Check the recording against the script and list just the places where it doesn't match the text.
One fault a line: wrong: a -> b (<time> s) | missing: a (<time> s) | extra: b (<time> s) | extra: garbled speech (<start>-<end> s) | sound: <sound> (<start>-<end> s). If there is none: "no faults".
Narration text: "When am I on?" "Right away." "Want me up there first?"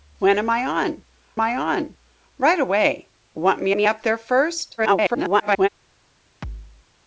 extra: I on (1.4 s)
extra: me (3.7 s)
extra: garbled speech (4.8-5.7 s)
sound: thud (6.4-6.9 s)